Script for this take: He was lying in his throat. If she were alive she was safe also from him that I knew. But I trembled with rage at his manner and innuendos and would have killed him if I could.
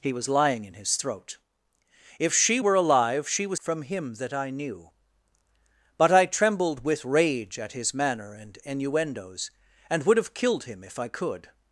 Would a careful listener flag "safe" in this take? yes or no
yes